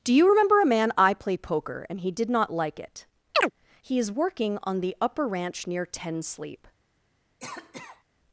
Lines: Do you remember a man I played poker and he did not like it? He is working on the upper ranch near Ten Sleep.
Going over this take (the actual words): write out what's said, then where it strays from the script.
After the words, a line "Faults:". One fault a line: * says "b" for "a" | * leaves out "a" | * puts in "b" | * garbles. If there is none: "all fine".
Do you remember a man I play poker and he did not like it? He is working on the upper ranch near Ten Sleep.
Faults:
* says "play" for "played"